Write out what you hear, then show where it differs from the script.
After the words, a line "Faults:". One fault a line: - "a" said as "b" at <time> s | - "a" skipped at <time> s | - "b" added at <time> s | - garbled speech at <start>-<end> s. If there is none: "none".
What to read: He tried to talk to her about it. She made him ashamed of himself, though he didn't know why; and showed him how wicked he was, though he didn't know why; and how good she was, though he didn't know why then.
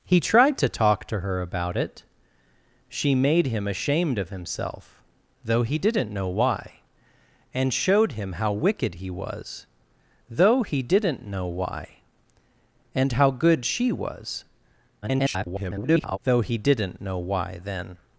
He tried to talk to her about it. She made him ashamed of himself, though he didn't know why; and showed him how wicked he was, though he didn't know why; and how good she was, [garbled] though he didn't know why then.
Faults:
- garbled speech at 15.0-16.2 s